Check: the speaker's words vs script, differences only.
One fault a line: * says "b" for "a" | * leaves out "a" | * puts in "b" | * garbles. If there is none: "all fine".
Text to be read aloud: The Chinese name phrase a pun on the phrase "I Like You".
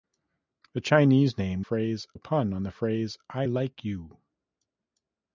all fine